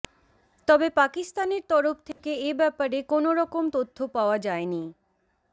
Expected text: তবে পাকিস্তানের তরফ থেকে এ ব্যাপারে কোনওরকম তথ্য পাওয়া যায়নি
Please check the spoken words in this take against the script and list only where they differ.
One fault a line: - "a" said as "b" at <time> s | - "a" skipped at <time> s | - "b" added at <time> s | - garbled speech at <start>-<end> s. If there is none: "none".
none